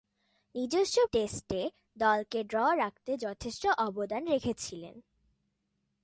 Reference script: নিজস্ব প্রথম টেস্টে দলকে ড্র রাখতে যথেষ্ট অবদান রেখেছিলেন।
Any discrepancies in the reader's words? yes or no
yes